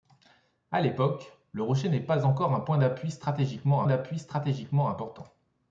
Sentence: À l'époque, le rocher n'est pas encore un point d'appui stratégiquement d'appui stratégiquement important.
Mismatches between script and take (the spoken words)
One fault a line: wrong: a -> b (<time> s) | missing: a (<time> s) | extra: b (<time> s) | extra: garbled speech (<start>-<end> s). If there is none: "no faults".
no faults